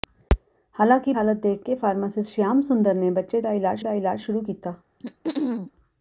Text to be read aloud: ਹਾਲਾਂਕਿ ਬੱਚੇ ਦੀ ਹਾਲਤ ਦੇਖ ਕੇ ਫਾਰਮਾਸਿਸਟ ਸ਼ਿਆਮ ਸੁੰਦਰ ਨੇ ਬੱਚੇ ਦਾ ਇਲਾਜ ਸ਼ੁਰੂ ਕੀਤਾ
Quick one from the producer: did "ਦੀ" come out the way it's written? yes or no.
no